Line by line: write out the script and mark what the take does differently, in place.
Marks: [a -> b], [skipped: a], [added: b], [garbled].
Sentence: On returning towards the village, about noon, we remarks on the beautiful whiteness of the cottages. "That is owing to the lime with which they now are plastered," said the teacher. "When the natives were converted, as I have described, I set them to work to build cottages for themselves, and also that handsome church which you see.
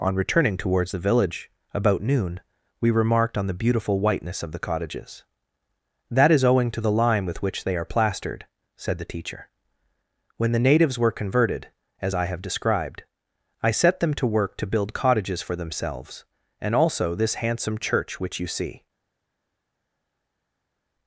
On returning towards the village, about noon, we [remarks -> remarked] on the beautiful whiteness of the cottages. "That is owing to the lime with which they [skipped: now] are plastered," said the teacher. "When the natives were converted, as I have described, I set them to work to build cottages for themselves, and also [that -> this] handsome church which you see.